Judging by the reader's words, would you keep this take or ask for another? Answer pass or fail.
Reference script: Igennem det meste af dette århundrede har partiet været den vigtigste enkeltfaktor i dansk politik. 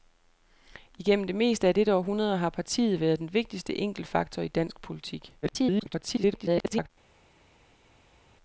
fail